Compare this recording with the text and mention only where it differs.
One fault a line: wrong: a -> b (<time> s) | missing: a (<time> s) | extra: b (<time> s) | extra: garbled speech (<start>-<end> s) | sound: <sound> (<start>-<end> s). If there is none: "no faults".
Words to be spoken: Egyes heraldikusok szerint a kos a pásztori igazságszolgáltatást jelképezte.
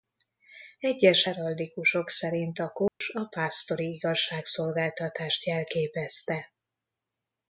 sound: dropout (2.9-3.0 s)